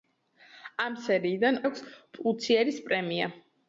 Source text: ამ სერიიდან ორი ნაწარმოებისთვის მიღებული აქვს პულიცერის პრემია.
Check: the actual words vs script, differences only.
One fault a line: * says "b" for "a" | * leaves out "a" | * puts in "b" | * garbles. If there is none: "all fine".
* leaves out "ორი ნაწარმოებისთვის მიღებული"